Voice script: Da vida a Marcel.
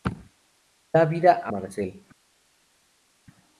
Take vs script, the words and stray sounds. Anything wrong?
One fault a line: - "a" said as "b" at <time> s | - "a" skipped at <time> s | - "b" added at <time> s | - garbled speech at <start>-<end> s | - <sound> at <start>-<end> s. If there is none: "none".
none